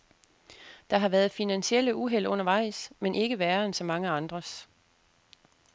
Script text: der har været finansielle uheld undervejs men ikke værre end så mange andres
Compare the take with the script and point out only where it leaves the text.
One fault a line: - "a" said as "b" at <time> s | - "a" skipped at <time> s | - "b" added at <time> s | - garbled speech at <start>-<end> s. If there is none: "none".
none